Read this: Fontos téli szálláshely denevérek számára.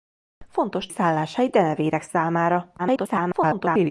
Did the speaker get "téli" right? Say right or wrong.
wrong